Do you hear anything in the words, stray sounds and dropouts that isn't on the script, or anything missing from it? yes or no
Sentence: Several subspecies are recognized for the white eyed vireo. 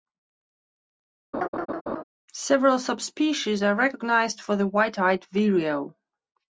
yes